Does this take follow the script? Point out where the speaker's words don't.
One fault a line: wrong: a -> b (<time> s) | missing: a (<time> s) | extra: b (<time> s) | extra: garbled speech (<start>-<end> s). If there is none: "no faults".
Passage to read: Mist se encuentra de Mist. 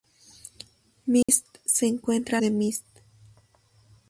no faults